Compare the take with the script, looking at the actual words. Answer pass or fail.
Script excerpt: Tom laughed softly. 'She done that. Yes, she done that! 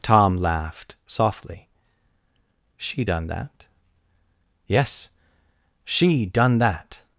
pass